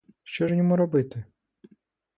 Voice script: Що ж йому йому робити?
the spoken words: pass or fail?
fail